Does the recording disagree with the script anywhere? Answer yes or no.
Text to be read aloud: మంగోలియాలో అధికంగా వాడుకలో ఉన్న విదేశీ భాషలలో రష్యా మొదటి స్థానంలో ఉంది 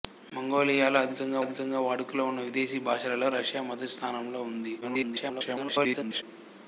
yes